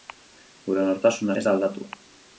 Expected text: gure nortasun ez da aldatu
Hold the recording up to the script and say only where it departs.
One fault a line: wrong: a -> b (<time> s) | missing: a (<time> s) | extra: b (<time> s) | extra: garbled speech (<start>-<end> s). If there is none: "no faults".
no faults